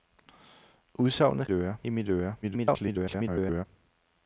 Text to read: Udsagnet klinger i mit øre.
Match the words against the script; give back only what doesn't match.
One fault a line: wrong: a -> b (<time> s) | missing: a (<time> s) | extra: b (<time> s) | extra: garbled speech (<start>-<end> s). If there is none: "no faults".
wrong: klinger -> øre (1.5 s)
extra: garbled speech (2.4-3.7 s)